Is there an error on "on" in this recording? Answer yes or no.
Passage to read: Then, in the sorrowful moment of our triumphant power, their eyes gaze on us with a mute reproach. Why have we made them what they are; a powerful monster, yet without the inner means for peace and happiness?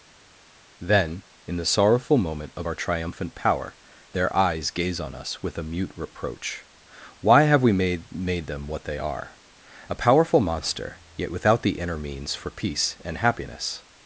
no